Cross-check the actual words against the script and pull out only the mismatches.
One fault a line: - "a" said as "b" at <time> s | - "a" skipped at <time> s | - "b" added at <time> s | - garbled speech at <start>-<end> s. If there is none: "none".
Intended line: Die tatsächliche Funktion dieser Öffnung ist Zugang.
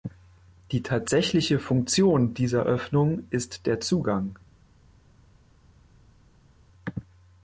- "der" added at 3.7 s